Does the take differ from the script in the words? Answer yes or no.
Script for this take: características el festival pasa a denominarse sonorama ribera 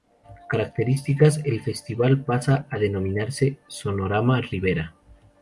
no